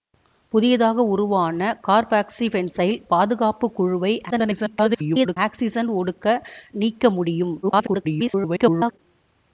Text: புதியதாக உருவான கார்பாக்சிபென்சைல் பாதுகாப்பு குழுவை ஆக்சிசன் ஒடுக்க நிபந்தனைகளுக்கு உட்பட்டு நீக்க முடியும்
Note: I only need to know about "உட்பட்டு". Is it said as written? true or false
false